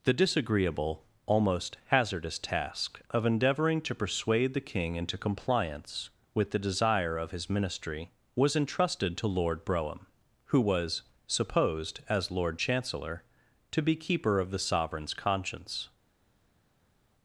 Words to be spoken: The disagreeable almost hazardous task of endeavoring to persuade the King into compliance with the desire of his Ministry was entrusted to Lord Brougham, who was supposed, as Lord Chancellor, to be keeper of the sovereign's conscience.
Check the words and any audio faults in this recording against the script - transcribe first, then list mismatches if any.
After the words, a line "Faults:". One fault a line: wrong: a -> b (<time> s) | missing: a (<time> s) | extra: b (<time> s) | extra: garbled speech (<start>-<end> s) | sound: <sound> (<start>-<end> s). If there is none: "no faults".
The disagreeable almost hazardous task of endeavoring to persuade the King into compliance with the desire of his Ministry was entrusted to Lord Brougham, who was supposed, as Lord Chancellor, to be keeper of the sovereign's conscience.
Faults:
no faults